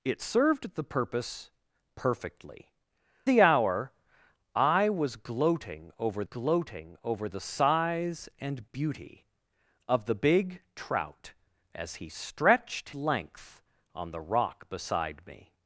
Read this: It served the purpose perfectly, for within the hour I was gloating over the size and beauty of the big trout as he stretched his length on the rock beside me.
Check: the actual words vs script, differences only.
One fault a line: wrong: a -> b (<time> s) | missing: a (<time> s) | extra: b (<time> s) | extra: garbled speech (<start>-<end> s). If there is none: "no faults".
missing: for within (2.7 s)
extra: gloating over (6.2 s)
missing: his (12.9 s)